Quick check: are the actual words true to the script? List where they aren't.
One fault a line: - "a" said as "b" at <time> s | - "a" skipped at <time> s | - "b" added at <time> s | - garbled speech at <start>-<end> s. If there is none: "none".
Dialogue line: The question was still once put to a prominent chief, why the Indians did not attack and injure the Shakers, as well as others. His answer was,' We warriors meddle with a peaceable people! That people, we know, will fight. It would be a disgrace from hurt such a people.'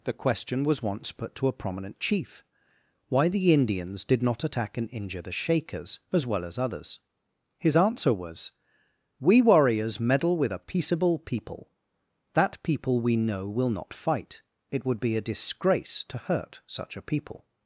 - "still" skipped at 0.8 s
- "not" added at 13.7 s
- "from" said as "to" at 16.1 s